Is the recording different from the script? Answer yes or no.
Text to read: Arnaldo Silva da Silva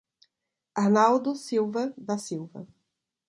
no